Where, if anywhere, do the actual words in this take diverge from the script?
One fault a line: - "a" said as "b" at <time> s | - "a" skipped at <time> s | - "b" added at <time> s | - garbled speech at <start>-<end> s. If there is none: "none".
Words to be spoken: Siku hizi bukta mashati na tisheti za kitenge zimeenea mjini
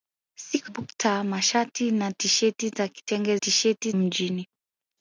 - "hizi" skipped at 0.7 s
- "zimeenea" said as "tisheti" at 3.3 s